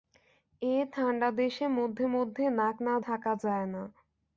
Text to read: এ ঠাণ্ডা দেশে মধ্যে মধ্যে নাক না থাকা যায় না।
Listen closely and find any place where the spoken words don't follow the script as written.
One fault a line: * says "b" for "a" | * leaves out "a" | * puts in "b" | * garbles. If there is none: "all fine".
all fine